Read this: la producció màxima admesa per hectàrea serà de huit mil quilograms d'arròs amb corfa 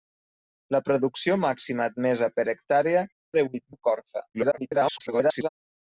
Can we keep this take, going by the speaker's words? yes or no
no